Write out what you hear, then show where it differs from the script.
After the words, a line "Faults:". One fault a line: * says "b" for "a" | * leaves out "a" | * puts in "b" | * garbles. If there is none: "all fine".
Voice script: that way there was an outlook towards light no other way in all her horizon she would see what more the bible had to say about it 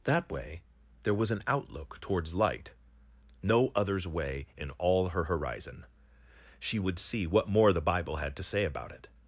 that way there was an outlook towards light no others way in all her horizon she would see what more the bible had to say about it
Faults:
* says "others" for "other"